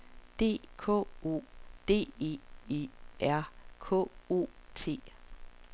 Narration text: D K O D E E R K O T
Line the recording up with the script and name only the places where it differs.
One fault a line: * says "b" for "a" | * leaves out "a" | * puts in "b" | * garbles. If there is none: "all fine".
all fine